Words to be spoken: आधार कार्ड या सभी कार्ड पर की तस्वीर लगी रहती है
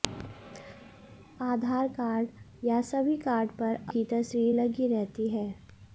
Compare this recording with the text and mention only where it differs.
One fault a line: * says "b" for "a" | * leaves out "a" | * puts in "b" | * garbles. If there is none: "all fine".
all fine